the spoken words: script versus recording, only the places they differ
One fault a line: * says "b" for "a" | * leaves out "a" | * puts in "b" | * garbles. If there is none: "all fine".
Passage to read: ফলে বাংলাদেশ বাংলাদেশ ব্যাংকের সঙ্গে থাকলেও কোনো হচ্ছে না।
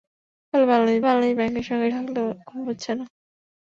all fine